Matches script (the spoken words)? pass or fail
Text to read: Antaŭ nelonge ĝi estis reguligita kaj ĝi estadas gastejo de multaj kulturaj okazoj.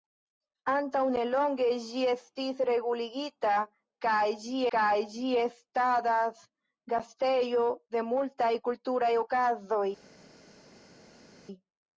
fail